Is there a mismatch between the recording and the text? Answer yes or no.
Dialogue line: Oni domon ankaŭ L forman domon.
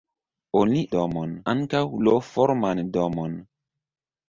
no